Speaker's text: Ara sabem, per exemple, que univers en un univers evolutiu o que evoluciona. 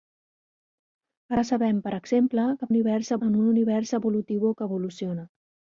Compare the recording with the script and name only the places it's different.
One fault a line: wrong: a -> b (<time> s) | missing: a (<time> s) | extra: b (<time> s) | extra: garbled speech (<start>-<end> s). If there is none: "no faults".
no faults